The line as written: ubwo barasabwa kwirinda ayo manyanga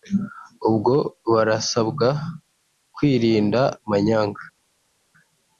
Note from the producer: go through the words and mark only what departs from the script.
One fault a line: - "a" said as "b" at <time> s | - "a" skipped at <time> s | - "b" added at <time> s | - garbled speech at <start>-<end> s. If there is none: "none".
- "ayo" skipped at 3.6 s